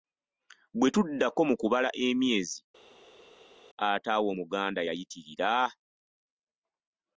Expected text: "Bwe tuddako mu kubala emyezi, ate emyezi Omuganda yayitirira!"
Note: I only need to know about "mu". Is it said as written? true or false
true